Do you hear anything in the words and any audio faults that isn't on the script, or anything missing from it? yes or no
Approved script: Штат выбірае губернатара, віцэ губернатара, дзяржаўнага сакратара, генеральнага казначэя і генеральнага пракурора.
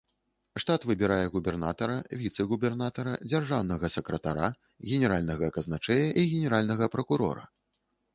no